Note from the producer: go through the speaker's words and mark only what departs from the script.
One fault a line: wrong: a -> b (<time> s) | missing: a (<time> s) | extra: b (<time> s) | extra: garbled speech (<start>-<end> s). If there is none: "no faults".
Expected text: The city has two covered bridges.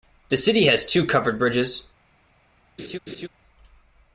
no faults